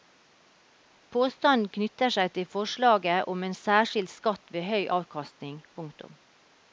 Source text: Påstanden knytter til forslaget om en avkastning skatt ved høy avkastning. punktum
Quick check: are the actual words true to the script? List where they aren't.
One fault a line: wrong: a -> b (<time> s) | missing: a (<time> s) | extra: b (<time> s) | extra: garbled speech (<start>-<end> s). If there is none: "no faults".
extra: seg (2.1 s)
wrong: avkastning -> særskilt (3.6 s)